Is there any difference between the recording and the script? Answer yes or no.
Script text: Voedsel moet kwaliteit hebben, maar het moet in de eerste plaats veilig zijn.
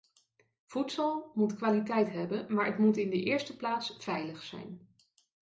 no